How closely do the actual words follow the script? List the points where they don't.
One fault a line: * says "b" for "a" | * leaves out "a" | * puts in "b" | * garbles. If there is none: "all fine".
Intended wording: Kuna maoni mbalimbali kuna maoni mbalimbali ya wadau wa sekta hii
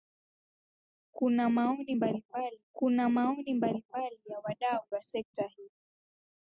all fine